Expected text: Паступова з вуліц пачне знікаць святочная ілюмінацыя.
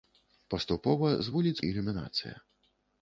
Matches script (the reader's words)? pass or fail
fail